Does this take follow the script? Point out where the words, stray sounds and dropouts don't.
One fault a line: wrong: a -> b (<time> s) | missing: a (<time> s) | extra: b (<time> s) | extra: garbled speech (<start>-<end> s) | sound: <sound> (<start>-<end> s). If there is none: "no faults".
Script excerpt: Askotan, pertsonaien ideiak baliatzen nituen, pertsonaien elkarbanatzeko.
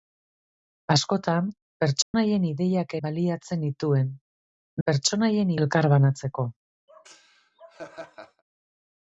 sound: dropout (2.0-2.1 s)
sound: laugh (6.9-8.4 s)